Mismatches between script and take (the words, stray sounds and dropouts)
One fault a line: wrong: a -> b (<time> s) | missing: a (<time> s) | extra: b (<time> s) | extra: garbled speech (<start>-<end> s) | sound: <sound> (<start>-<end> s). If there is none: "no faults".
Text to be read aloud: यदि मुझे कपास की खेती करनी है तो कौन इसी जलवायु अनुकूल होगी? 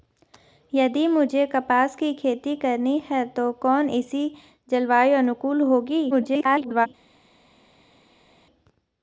extra: garbled speech (6.1-6.9 s)